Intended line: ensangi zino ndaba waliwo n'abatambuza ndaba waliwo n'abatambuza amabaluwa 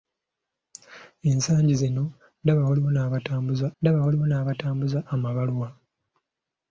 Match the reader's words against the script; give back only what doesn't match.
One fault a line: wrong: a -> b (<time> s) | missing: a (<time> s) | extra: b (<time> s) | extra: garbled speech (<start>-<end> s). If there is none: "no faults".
no faults